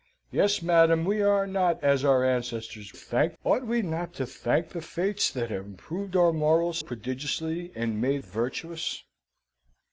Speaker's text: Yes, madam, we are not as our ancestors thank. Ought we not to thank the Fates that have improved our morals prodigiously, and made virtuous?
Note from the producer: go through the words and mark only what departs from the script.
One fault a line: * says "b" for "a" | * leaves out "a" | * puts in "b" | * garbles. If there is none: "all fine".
all fine